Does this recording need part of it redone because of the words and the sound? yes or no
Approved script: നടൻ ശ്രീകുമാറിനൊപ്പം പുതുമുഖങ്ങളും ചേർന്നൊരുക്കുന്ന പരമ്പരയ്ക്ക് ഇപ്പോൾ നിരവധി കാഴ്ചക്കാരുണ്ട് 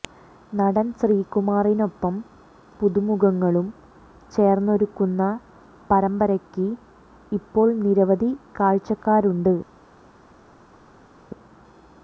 no